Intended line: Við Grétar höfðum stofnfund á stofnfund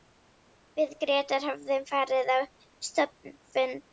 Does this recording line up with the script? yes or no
no